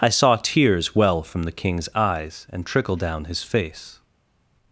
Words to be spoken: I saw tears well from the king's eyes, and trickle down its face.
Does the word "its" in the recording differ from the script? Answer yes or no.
yes